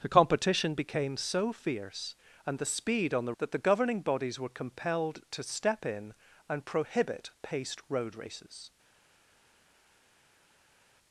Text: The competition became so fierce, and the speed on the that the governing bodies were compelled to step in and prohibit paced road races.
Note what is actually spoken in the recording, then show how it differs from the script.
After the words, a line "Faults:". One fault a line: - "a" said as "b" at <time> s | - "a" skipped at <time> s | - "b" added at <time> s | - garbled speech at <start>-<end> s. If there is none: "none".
The competition became so fierce, and the speed on the that the governing bodies were compelled to step in and prohibit paced road races.
Faults:
none